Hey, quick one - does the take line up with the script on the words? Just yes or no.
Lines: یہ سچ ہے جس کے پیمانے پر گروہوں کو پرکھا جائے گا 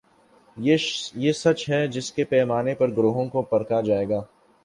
yes